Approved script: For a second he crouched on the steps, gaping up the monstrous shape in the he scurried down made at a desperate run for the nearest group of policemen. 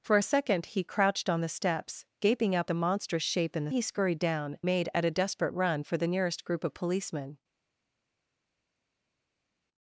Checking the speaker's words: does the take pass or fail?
pass